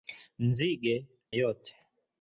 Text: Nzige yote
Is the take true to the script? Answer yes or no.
yes